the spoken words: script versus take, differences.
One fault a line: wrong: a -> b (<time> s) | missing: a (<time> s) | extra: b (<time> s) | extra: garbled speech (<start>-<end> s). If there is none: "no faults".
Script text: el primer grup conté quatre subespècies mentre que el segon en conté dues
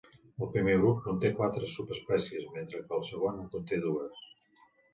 no faults